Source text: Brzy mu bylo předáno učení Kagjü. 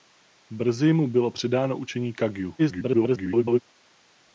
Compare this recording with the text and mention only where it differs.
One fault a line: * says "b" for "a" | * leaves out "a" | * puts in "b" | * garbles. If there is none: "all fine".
* garbles